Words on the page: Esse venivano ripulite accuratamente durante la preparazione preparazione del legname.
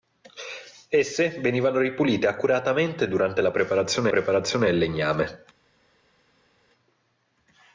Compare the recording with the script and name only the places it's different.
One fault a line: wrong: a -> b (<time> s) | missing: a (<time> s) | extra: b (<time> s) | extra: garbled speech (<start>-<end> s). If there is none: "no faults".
no faults